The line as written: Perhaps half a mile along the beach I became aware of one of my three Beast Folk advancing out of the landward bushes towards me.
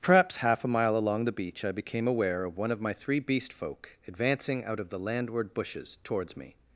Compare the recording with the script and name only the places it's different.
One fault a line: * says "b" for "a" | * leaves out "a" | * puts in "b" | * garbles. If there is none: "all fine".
all fine